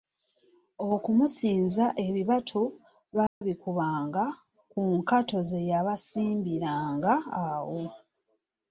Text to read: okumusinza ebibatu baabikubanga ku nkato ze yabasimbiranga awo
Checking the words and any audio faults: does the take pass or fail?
fail